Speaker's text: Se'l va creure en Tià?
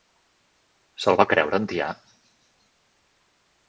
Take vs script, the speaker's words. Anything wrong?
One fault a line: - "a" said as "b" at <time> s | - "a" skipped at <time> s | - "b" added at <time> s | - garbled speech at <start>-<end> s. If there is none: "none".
none